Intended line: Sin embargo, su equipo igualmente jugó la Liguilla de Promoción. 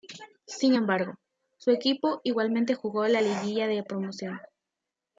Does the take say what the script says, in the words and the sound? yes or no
yes